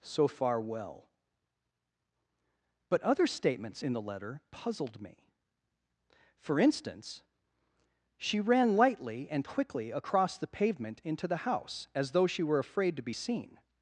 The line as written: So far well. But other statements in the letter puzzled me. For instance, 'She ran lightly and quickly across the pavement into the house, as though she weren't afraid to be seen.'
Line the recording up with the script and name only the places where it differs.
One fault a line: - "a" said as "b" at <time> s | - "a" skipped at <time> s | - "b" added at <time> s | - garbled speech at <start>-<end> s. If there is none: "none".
- "weren't" said as "were" at 12.4 s